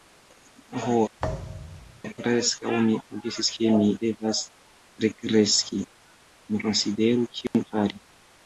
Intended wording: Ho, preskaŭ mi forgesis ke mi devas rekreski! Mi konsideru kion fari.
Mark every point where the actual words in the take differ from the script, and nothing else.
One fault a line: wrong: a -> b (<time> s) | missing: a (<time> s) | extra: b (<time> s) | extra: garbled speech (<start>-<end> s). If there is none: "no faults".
no faults